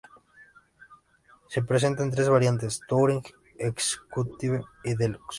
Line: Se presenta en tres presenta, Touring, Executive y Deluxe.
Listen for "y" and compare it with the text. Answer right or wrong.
right